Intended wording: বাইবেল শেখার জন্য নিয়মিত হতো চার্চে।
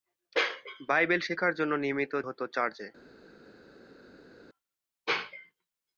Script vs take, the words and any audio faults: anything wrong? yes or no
no